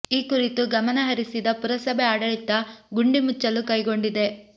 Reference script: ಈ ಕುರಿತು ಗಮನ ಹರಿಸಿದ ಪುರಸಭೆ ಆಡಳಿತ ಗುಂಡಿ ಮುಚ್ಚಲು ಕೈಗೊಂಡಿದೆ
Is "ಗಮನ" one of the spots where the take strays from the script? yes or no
no